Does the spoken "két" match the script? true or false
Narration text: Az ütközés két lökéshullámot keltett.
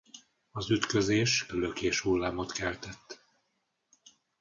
false